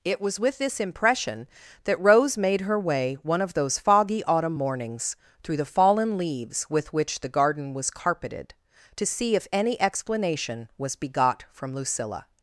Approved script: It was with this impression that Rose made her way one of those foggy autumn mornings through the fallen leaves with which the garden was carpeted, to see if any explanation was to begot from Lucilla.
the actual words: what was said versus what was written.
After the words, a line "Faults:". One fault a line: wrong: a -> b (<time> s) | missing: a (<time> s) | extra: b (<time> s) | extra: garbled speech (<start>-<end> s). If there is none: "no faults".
It was with this impression that Rose made her way one of those foggy autumn mornings through the fallen leaves with which the garden was carpeted, to see if any explanation was begot from Lucilla.
Faults:
missing: to (11.0 s)